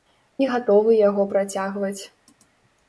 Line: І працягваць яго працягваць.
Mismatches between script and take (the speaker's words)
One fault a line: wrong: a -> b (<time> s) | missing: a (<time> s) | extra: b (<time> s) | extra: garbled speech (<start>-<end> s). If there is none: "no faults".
wrong: працягваць -> гатовы (0.5 s)